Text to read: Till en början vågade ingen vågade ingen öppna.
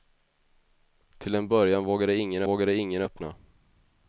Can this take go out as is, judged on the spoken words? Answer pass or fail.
pass